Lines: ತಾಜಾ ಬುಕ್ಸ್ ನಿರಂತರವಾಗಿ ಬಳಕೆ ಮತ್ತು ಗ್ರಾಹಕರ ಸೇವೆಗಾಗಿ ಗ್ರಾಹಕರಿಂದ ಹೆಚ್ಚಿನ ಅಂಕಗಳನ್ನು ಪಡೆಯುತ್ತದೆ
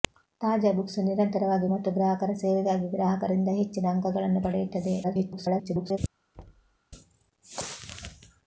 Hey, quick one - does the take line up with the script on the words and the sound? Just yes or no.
no